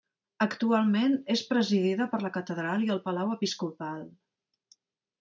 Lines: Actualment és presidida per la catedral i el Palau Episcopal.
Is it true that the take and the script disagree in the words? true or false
false